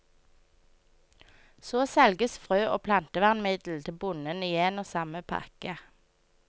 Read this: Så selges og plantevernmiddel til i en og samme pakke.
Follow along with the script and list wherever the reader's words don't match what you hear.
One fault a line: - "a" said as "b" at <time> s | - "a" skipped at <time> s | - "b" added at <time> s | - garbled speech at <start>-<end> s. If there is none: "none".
- "frø" added at 2.5 s
- "bonden" added at 4.0 s